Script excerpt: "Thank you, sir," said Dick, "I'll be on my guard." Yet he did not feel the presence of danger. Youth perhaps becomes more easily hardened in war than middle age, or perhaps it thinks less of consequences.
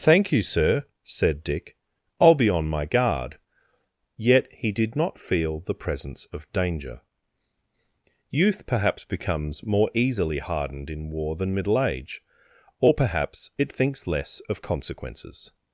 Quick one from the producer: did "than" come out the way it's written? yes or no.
yes